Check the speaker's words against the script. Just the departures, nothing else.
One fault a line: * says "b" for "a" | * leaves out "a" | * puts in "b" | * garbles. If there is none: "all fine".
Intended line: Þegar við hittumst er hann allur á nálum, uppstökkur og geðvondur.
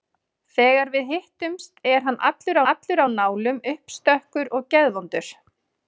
* puts in "allur"